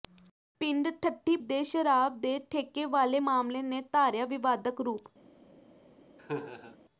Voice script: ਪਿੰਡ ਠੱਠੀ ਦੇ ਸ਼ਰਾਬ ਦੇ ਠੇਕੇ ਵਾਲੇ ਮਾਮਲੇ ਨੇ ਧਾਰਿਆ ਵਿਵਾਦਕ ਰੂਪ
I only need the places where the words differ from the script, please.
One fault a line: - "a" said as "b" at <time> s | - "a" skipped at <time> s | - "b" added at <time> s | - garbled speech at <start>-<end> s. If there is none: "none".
none